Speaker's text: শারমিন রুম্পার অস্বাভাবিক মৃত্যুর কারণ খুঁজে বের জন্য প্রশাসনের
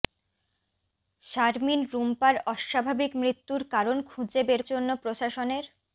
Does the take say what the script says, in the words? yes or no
yes